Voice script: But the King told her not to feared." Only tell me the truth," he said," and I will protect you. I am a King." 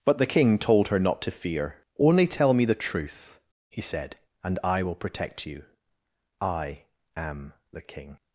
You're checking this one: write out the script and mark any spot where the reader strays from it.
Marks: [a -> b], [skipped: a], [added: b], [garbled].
But the King told her not to [feared." -> fear] Only tell me the truth," he said," and I will protect you. I am [a -> the] King."